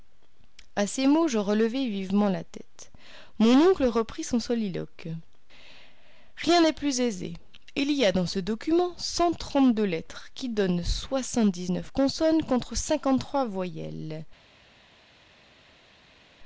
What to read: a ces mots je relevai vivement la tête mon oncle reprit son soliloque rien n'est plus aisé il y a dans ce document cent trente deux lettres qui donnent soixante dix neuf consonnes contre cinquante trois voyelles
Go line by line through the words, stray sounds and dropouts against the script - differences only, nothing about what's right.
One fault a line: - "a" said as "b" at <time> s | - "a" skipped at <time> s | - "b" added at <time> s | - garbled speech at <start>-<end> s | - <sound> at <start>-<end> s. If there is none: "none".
none